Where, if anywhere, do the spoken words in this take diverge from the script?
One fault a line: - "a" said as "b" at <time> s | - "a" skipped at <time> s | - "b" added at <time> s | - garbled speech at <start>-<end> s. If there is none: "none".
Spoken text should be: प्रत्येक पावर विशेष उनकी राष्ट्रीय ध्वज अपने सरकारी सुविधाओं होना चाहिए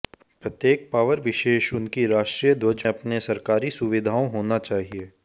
none